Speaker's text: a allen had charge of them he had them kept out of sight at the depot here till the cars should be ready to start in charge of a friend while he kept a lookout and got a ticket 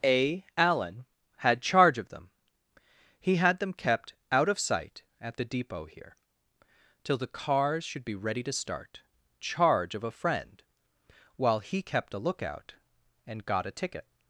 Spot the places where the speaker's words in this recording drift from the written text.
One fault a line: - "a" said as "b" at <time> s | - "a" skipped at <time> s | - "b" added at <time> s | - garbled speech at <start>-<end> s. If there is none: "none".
- "in" skipped at 9.0 s